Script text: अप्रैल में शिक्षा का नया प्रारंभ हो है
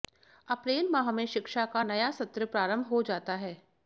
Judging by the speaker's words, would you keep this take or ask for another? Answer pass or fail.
fail